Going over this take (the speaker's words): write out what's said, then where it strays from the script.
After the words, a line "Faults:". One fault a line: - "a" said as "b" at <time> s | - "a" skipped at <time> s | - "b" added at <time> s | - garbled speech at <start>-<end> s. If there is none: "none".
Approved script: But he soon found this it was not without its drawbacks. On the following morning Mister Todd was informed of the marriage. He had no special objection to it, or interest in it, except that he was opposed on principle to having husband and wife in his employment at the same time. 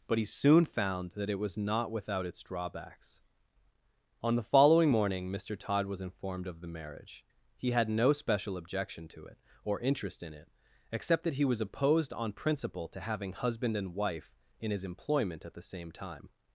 But he soon found that it was not without its drawbacks. On the following morning Mister Todd was informed of the marriage. He had no special objection to it, or interest in it, except that he was opposed on principle to having husband and wife in his employment at the same time.
Faults:
- "this" said as "that" at 1.1 s